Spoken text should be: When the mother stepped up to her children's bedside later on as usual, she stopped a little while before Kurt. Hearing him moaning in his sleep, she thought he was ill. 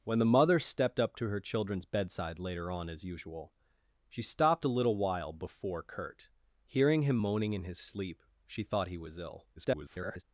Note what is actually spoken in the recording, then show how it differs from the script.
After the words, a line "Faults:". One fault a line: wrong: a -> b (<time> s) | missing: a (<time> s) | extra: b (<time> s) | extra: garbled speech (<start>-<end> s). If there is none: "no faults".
When the mother stepped up to her children's bedside later on as usual, she stopped a little while before Kurt. Hearing him moaning in his sleep, she thought he was ill. [garbled]
Faults:
extra: garbled speech (9.6-10.2 s)